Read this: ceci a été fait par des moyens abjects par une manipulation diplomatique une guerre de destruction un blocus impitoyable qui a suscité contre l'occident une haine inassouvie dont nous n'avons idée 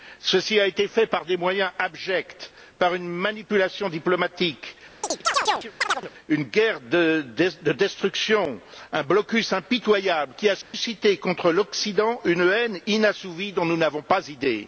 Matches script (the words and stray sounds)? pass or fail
fail